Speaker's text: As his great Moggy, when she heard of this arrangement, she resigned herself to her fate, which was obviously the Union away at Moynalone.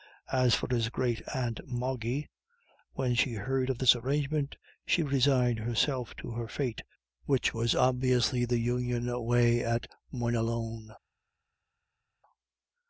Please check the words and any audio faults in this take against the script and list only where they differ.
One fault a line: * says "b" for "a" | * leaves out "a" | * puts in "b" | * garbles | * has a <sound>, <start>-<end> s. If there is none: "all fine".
* puts in "for"
* puts in "aunt"